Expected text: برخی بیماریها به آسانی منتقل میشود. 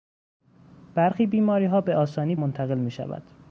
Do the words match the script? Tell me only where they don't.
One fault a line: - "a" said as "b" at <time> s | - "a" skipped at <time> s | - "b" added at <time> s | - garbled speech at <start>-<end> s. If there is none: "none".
none